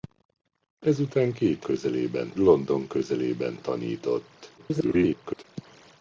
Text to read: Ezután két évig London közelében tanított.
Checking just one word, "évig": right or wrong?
wrong